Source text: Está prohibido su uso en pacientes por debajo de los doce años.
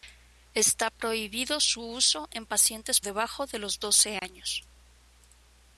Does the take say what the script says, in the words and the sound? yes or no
no